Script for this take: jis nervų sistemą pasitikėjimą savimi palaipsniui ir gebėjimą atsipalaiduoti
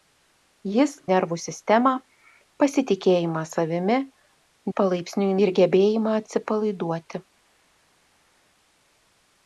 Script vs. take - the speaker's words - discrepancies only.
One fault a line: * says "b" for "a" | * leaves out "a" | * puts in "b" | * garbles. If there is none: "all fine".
all fine